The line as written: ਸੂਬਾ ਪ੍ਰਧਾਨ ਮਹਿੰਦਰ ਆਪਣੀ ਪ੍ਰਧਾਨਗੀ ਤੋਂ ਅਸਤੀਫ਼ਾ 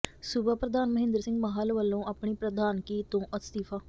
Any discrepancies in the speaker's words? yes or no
yes